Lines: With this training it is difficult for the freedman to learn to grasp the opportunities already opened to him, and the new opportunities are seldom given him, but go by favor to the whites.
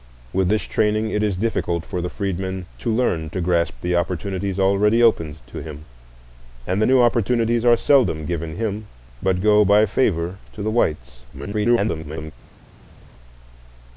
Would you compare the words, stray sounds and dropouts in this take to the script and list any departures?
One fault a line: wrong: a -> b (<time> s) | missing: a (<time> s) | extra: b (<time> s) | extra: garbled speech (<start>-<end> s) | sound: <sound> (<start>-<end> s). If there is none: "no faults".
extra: garbled speech (11.3-12.3 s)